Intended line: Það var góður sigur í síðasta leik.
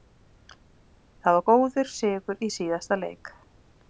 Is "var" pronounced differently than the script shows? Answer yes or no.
no